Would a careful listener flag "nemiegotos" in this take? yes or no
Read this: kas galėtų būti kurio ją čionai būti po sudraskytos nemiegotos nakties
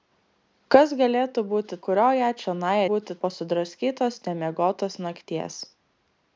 no